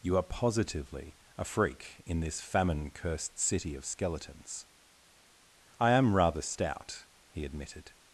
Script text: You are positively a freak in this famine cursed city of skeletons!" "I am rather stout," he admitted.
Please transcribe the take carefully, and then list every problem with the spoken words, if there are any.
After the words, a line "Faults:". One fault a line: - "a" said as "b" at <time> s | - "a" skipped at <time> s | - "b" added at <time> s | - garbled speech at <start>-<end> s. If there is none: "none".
You are positively a freak in this famine cursed city of skeletons!" "I am rather stout," he admitted.
Faults:
none